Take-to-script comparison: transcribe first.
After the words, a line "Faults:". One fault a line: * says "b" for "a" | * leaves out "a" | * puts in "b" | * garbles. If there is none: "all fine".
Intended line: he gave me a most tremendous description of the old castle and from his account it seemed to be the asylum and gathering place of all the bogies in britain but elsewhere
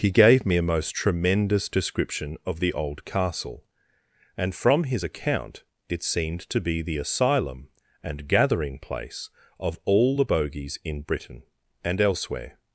he gave me a most tremendous description of the old castle and from his account it seemed to be the asylum and gathering place of all the bogies in britain and elsewhere
Faults:
* says "and" for "but"